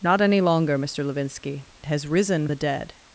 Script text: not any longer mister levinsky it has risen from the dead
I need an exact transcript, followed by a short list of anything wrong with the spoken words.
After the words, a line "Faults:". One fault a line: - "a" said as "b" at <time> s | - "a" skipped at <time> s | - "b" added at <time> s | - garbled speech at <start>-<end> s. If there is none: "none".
not any longer mister levinsky has risen the dead
Faults:
- "it" skipped at 1.6 s
- "from" skipped at 2.5 s